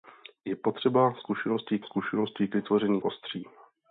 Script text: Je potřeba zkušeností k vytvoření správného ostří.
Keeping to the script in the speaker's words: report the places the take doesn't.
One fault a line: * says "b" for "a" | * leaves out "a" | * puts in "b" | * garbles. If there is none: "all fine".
* puts in "zkušeností"
* leaves out "správného"